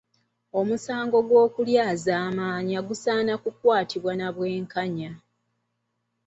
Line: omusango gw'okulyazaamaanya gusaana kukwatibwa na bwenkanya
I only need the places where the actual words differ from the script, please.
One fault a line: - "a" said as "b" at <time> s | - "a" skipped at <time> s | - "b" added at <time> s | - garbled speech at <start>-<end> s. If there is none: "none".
none